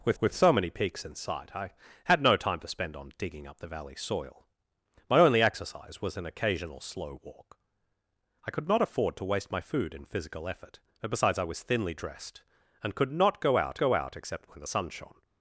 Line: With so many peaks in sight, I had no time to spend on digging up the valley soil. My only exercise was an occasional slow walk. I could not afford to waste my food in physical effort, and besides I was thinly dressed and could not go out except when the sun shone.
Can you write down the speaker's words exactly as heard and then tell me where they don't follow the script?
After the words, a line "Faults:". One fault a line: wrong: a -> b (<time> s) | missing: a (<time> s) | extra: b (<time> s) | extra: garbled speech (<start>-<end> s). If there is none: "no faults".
With with so many peaks in sight, I had no time to spend on digging up the valley soil. My only exercise was an occasional slow walk. I could not afford to waste my food in physical effort, and besides I was thinly dressed and could not go out go out except when the sun shone.
Faults:
extra: with (0.2 s)
extra: go out (13.8 s)